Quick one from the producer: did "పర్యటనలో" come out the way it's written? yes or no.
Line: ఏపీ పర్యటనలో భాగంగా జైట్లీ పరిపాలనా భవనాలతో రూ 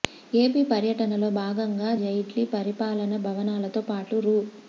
yes